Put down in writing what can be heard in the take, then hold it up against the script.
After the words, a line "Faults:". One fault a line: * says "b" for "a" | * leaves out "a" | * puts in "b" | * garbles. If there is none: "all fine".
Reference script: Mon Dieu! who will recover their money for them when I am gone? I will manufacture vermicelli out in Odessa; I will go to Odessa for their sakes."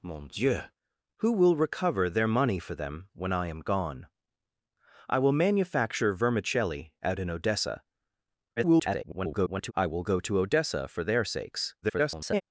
Mon Dieu! who will recover their money for them when I am gone? I will manufacture vermicelli out in Odessa; [garbled] I will go to Odessa for their sakes." [garbled]
Faults:
* garbles
* garbles